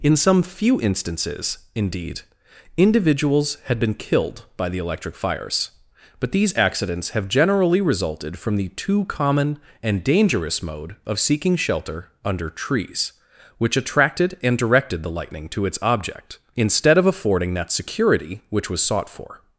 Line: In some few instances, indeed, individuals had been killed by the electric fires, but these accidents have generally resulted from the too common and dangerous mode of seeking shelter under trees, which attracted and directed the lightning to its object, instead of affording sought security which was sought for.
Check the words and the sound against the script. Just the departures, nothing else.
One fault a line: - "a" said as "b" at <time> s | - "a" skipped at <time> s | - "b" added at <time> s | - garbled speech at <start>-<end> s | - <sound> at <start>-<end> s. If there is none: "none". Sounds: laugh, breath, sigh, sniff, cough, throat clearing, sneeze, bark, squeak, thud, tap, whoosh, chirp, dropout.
- "sought" said as "that" at 17.5 s